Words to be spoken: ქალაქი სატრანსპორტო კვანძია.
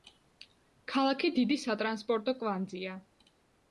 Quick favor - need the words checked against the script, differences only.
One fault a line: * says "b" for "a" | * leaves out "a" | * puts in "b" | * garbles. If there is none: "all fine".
* puts in "დიდი"